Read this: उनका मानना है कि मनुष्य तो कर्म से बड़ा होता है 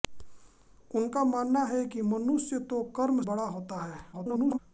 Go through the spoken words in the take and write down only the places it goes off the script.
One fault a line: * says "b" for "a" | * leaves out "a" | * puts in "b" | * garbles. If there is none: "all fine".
* leaves out "से"
* garbles